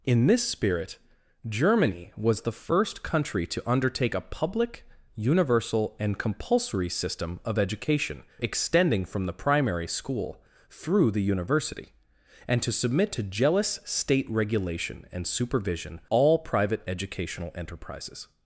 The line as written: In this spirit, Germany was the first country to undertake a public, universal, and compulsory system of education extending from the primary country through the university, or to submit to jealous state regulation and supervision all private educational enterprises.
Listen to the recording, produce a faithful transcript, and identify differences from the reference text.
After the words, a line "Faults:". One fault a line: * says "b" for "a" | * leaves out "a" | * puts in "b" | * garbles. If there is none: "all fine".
In this spirit, Germany was the first country to undertake a public, universal, and compulsory system of education extending from the primary school through the university, and to submit to jealous state regulation and supervision all private educational enterprises.
Faults:
* says "school" for "country"
* says "and" for "or"